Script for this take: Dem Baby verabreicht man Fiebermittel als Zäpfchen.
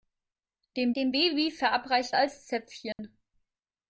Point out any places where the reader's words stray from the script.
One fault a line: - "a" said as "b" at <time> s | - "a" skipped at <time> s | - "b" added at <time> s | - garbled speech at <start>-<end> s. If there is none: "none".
- "dem" added at 1.0 s
- "man Fiebermittel" skipped at 2.2 s